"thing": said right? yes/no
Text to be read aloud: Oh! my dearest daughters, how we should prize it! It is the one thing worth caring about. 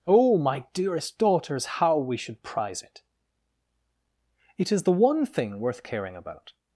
yes